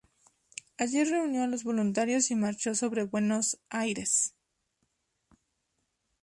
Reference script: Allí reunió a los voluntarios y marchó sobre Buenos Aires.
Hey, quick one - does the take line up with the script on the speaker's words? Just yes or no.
yes